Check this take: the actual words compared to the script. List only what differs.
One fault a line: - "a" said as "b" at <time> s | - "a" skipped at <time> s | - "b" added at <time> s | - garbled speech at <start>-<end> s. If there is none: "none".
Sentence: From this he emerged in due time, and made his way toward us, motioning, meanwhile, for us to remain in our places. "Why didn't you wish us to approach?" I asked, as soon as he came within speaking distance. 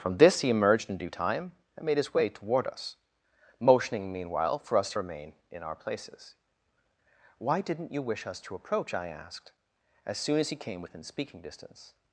none